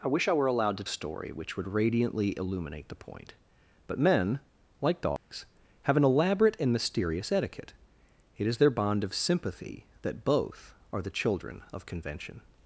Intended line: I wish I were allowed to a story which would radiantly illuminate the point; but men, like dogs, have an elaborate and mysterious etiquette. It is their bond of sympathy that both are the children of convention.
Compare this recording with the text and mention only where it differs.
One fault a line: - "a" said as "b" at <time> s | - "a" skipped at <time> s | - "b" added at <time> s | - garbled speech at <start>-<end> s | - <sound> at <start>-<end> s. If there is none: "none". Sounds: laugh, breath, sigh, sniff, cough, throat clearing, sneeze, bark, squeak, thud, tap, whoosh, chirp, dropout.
- dropout at 5.2-5.3 s